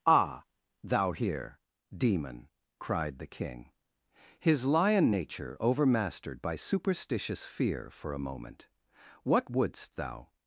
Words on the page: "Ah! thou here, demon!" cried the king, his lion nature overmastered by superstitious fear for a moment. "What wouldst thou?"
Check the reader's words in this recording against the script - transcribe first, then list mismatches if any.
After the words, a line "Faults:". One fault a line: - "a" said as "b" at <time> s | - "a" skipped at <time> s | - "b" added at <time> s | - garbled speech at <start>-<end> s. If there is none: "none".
"Ah! thou here, demon!" cried the king, his lion nature overmastered by superstitious fear for a moment. "What wouldst thou?"
Faults:
none